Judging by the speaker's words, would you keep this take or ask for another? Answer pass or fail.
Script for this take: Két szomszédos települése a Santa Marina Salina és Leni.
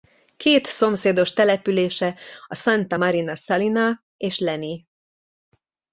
pass